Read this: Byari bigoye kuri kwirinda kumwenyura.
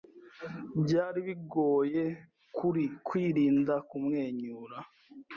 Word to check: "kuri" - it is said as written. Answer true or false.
true